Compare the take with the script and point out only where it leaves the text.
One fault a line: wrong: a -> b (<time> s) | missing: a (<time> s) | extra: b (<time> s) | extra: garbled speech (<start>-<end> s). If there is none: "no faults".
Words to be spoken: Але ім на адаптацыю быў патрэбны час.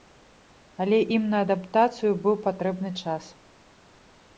no faults